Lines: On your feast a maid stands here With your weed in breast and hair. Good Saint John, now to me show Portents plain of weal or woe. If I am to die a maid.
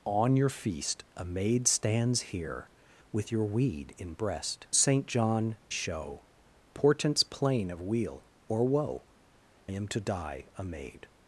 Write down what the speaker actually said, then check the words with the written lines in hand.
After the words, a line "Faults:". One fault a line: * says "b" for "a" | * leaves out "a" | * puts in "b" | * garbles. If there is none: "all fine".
On your feast a maid stands here With your weed in breast Saint John, show Portents plain of weal or woe. Am to die a maid.
Faults:
* leaves out "and hair Good"
* leaves out "now to me"
* leaves out "If I"